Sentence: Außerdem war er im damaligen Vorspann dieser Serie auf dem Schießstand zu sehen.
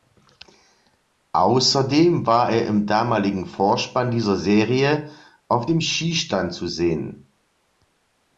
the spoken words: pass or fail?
pass